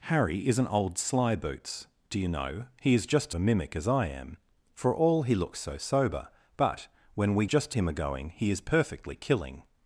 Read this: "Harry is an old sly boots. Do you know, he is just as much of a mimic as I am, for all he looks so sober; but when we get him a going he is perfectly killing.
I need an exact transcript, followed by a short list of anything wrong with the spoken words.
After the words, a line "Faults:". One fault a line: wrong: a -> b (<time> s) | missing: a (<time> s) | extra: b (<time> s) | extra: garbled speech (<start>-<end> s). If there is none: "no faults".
"Harry is an old sly boots. Do you know, he is just a mimic as I am, for all he looks so sober; but when we just him a going he is perfectly killing.
Faults:
missing: as much of (3.3 s)
wrong: get -> just (7.4 s)